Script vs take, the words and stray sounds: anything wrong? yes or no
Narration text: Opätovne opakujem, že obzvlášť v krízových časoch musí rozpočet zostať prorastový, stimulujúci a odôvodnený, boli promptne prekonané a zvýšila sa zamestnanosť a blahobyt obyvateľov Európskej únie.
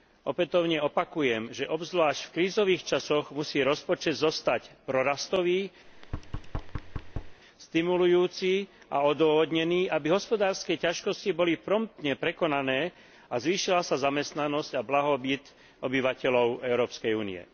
yes